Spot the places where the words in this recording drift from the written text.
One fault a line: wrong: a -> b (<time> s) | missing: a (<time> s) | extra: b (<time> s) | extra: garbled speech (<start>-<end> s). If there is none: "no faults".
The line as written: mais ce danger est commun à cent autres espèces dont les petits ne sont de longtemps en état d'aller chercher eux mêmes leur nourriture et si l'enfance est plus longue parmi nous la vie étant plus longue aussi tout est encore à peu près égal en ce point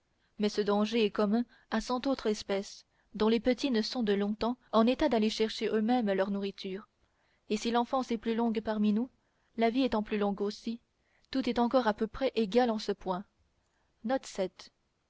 no faults